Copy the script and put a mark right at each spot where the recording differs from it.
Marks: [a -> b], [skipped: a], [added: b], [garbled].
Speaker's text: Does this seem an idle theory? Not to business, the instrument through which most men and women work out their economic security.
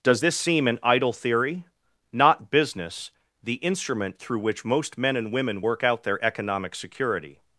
Does this seem an idle theory? Not [skipped: to] business, the instrument through which most men and women work out their economic security.